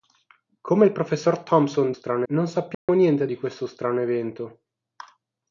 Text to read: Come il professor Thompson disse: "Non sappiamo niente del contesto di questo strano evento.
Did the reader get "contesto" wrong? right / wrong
wrong